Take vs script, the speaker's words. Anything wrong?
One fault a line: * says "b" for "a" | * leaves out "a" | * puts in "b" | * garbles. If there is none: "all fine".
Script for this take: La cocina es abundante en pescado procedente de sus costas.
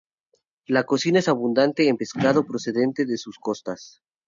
all fine